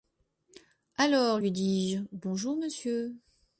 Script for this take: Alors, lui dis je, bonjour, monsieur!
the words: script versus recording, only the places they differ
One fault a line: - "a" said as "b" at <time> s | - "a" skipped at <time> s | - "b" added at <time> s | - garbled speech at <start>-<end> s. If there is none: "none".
none